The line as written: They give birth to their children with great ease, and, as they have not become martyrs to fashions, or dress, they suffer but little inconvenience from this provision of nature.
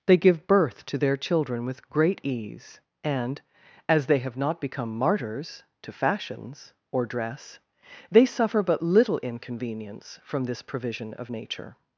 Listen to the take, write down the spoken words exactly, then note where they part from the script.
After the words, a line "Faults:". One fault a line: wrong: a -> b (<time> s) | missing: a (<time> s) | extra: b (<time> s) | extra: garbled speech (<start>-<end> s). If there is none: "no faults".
They give birth to their children with great ease, and, as they have not become martyrs to fashions, or dress, they suffer but little inconvenience from this provision of nature.
Faults:
no faults